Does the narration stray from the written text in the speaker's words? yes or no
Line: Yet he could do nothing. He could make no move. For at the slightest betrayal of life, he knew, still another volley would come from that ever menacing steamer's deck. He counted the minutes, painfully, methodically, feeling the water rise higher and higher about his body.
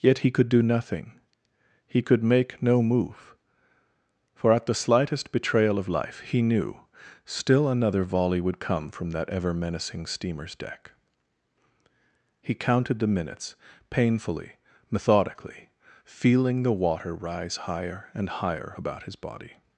no